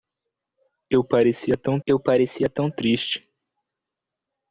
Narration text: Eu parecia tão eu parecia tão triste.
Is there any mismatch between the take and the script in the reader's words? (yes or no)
no